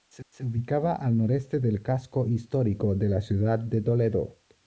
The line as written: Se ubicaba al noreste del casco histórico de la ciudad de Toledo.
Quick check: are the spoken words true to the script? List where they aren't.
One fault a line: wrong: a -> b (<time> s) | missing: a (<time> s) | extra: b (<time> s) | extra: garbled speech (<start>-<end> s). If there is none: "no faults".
extra: se (0.3 s)